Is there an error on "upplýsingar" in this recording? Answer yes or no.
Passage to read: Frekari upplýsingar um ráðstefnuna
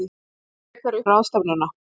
yes